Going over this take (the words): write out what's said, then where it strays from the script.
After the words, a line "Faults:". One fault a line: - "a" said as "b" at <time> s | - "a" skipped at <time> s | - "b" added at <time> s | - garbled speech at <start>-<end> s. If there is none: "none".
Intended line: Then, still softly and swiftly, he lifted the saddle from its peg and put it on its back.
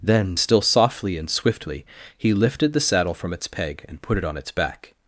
Then, still softly and swiftly, he lifted the saddle from its peg and put it on its back.
Faults:
none